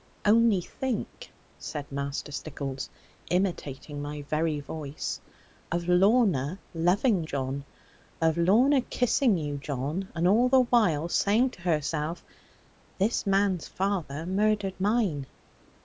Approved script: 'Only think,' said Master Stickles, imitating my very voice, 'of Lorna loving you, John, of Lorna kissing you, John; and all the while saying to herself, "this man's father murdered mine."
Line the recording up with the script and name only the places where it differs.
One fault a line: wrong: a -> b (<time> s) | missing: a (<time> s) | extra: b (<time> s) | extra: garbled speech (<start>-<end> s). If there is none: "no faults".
missing: you (7.2 s)